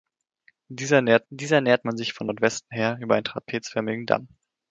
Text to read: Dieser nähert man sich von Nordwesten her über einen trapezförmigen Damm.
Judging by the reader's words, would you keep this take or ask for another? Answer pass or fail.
fail